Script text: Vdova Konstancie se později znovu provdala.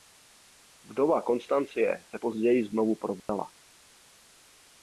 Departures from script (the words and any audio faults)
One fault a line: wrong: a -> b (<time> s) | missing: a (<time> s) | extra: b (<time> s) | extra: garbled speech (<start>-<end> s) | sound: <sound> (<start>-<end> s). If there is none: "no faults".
sound: dropout (3.2-3.3 s)